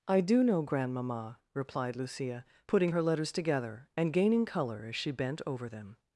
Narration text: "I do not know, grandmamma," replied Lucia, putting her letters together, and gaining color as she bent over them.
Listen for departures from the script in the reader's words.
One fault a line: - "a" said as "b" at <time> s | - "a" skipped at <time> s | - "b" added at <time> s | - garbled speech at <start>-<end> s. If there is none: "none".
- "not" skipped at 0.4 s